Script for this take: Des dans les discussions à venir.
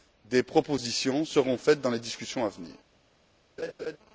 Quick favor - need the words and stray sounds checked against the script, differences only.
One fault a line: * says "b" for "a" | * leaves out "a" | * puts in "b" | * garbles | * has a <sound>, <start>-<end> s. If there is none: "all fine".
* puts in "propositions seront faites"
* has a laugh, 3.6-4.0 s